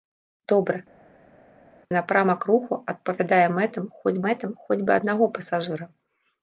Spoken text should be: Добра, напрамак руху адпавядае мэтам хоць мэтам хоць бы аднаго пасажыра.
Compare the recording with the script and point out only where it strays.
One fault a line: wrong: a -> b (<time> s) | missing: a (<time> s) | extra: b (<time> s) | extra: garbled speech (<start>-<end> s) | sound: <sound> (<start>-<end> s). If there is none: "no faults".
no faults